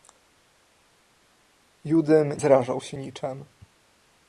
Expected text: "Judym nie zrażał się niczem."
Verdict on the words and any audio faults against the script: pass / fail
fail